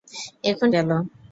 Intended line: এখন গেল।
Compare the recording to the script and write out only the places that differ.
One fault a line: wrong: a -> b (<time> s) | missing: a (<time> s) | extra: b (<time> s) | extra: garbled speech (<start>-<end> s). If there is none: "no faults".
no faults